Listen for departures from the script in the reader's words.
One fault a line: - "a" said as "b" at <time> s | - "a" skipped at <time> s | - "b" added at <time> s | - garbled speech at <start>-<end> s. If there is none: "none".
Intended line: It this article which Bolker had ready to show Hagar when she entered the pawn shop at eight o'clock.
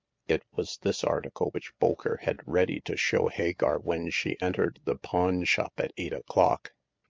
- "was" added at 0.6 s